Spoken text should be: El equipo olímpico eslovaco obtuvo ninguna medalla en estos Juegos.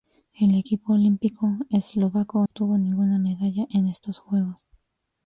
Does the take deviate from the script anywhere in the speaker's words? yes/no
no